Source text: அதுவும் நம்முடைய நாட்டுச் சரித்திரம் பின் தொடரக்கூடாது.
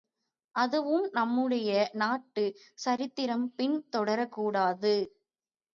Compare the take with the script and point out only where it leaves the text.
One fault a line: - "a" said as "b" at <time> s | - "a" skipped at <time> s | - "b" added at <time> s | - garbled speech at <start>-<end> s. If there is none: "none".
none